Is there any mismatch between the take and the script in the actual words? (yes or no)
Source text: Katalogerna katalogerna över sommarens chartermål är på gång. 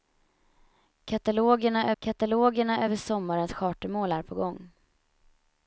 no